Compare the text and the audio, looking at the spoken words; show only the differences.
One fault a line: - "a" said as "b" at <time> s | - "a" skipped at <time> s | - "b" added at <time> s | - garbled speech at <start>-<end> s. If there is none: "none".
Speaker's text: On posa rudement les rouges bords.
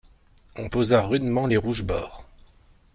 none